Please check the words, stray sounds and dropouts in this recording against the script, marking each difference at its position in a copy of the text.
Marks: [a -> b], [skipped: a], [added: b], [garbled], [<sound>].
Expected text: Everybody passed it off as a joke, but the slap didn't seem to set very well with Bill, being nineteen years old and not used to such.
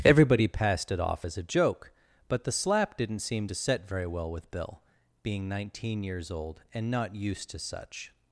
Everybody passed it off as a joke, but the slap didn't seem to set very well with Bill, being nineteen years old and not used to such.